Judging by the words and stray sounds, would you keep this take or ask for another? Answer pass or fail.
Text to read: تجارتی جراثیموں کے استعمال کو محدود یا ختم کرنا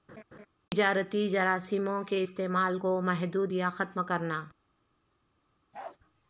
fail